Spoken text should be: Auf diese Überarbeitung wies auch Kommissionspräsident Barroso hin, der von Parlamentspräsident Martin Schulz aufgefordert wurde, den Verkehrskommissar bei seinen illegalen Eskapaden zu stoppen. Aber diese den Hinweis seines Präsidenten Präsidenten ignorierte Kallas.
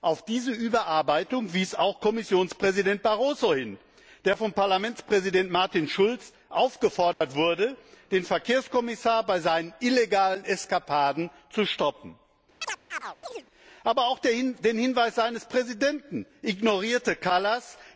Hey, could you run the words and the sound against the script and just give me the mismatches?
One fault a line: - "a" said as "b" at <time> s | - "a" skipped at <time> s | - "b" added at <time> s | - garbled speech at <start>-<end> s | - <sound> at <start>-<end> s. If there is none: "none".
- dropout at 7.1-7.2 s
- chirp at 12.6-13.5 s
- "diese" said as "auch" at 14.1 s
- "Präsidenten" skipped at 16.2 s